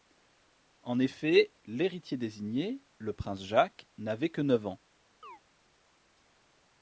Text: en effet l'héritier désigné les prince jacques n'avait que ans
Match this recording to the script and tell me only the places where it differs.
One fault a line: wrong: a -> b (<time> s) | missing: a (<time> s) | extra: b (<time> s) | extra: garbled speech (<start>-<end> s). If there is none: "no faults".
wrong: les -> le (3.0 s)
extra: neuf (4.4 s)